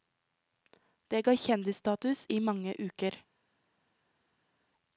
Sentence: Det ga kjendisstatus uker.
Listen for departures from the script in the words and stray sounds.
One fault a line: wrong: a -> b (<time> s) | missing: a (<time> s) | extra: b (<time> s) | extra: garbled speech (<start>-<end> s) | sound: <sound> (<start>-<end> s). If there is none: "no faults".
extra: i mange (2.3 s)